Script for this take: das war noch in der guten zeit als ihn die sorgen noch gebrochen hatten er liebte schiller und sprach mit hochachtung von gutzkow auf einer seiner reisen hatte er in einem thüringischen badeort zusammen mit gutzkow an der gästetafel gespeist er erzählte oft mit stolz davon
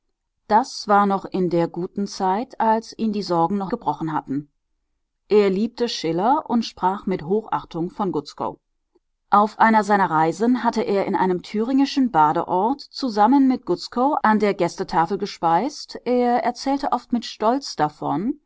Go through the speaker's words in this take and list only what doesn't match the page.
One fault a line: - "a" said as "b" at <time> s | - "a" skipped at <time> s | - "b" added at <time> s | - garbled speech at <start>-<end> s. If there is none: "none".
none